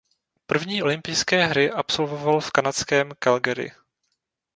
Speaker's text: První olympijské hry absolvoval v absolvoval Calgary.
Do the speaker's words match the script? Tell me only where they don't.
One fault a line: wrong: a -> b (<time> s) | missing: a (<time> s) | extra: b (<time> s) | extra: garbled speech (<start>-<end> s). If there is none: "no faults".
wrong: absolvoval -> kanadském (2.5 s)